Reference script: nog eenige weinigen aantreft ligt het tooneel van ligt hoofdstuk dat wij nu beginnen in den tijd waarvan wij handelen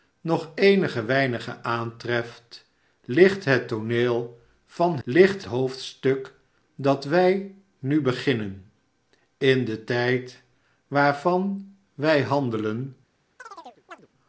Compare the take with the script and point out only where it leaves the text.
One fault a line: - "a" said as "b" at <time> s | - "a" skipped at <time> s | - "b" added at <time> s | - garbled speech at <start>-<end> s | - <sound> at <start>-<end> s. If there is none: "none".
- chirp at 13.4-14.1 s